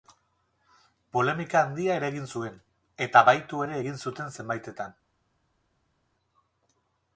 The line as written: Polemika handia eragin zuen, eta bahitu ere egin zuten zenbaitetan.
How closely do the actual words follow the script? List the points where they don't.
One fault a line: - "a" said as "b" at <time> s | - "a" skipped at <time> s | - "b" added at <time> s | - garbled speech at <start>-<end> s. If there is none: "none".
none